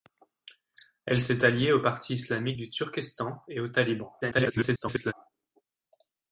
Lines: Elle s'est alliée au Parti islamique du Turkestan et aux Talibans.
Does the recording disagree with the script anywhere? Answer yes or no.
yes